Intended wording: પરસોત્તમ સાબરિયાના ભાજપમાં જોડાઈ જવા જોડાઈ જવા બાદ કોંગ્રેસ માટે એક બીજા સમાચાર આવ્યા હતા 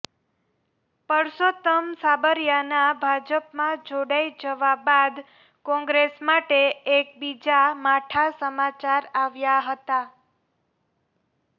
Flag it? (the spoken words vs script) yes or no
yes